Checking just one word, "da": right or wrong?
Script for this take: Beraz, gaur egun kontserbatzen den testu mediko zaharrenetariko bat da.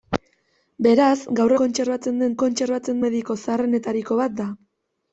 right